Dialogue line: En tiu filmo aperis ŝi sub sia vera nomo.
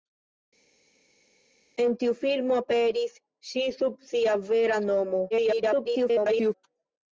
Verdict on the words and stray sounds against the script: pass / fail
fail